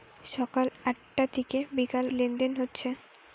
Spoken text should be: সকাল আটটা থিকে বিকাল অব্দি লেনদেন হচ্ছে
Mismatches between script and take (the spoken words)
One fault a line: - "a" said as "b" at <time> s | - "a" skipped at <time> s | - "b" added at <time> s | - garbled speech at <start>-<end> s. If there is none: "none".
- "অব্দি" skipped at 2.1 s